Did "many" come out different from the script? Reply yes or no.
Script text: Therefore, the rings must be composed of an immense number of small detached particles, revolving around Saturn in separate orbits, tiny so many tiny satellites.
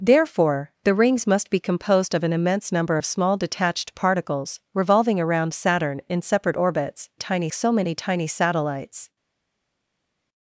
no